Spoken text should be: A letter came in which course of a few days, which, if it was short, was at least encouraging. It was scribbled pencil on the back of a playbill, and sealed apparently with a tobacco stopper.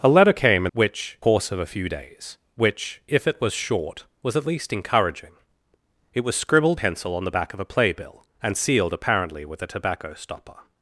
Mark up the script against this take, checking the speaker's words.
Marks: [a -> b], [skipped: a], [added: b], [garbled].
A letter came in which course of a few days, which, if it was short, was at least encouraging. It was scribbled pencil on the back of a playbill, and sealed apparently with a tobacco stopper.